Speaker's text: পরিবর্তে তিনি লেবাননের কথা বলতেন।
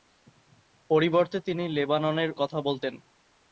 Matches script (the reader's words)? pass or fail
pass